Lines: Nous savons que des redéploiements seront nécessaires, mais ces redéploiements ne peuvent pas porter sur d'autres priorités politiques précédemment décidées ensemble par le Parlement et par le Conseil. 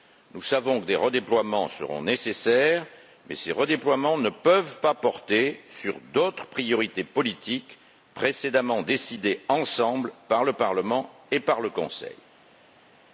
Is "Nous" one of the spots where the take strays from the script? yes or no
no